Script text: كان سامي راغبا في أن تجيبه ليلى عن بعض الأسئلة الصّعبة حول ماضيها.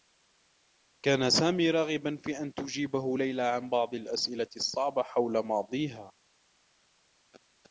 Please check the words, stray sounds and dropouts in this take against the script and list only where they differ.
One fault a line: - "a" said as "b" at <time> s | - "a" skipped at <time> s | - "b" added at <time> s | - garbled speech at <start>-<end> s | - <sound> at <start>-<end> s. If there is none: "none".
none